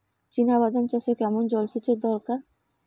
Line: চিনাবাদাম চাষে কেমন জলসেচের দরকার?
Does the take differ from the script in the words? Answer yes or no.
no